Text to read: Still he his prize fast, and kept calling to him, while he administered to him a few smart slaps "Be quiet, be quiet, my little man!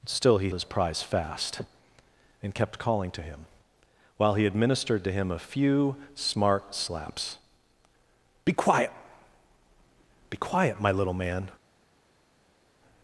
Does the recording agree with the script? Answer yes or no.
yes